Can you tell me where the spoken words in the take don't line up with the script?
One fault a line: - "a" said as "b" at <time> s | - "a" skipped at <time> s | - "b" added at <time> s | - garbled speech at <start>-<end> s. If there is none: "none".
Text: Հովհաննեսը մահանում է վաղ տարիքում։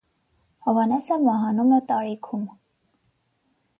- "վաղ" skipped at 1.8 s